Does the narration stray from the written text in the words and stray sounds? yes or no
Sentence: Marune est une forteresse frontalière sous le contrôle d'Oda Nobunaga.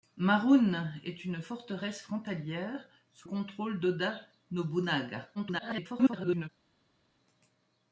yes